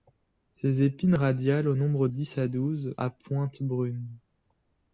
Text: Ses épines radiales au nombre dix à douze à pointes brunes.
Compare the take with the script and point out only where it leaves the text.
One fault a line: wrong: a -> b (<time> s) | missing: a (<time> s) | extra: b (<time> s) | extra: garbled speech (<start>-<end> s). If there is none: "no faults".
no faults